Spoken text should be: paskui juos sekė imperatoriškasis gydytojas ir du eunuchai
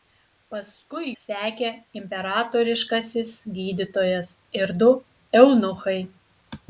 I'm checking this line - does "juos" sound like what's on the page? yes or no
no